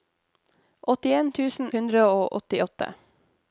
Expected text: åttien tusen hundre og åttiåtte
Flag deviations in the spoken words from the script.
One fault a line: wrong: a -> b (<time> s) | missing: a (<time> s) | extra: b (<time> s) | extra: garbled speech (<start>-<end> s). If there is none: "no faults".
no faults